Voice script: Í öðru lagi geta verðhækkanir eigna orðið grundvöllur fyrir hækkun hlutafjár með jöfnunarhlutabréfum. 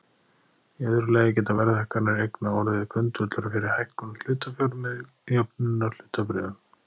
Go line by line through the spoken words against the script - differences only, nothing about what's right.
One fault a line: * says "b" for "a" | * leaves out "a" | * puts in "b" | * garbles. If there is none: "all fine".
all fine